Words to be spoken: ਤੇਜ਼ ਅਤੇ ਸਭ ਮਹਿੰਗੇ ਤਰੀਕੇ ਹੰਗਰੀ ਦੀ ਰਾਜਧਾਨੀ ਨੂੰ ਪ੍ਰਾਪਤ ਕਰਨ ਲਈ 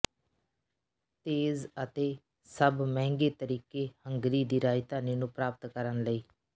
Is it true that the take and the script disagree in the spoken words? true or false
false